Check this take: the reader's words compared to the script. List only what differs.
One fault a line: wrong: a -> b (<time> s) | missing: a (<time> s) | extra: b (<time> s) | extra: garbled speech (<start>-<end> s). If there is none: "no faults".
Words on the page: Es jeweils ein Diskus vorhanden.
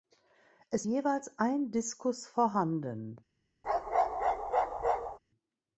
no faults